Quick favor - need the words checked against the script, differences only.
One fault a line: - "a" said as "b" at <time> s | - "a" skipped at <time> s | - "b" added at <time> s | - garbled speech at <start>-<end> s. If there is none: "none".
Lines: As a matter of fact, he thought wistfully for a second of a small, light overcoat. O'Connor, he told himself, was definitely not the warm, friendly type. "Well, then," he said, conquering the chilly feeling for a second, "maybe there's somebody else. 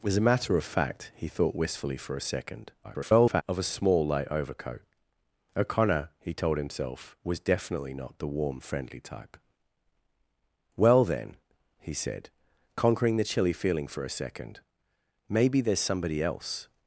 - garbled speech at 2.8-3.4 s